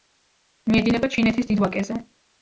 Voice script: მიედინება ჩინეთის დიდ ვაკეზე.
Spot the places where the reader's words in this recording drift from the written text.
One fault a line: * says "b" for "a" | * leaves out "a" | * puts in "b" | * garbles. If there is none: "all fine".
all fine